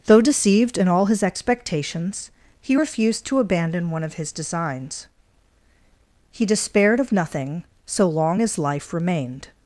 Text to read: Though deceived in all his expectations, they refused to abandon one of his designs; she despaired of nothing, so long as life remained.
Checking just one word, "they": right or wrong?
wrong